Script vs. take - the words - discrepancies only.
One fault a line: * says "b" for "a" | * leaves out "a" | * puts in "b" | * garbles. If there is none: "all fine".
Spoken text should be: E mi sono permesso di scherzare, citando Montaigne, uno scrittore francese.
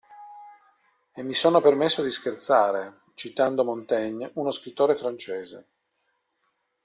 all fine